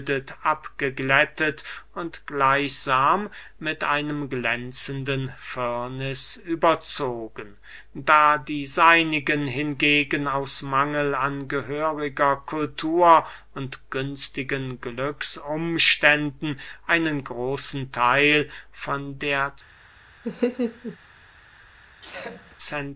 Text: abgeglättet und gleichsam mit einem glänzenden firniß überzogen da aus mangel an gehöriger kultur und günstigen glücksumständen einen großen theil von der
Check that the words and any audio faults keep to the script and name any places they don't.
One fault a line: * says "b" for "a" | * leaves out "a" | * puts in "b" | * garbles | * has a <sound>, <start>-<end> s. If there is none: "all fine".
* puts in "die seinigen hingegen"
* has a laugh, 20.2-21.0 s
* has a sneeze, 22.0-22.6 s